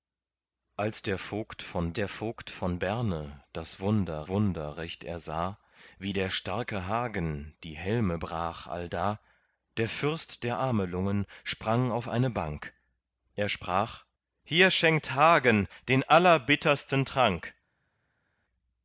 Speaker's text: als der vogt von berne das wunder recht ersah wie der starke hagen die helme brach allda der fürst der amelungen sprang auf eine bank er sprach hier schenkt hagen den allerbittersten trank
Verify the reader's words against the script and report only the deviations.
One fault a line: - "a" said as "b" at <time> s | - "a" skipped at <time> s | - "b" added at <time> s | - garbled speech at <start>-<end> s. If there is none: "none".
- "der vogt von" added at 1.9 s
- "wunder" added at 4.3 s